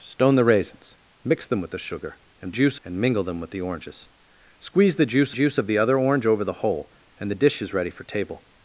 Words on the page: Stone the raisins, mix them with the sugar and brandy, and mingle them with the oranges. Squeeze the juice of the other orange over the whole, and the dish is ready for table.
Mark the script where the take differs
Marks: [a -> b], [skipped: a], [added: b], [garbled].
Stone the raisins, mix them with the sugar and [brandy, -> juice] and mingle them with the oranges. Squeeze the juice [added: juice] of the other orange over the whole, and the dish is ready for table.